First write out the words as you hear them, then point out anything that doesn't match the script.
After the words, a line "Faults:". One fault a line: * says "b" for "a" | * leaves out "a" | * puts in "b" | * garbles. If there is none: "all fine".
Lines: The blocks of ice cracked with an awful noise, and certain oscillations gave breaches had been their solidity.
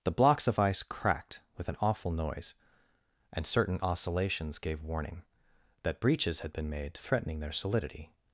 The blocks of ice cracked with an awful noise, and certain oscillations gave warning that breaches had been made threatening their solidity.
Faults:
* puts in "warning that"
* puts in "made threatening"